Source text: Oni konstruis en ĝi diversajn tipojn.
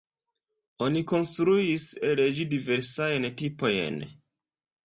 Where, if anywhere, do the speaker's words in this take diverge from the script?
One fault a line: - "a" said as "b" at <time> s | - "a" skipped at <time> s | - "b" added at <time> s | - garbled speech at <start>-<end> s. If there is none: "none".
- "en" said as "el" at 2.1 s